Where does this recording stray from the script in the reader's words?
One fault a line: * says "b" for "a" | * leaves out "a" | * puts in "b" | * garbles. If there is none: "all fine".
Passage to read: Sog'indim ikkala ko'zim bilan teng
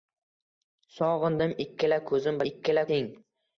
* says "ikkala" for "bilan"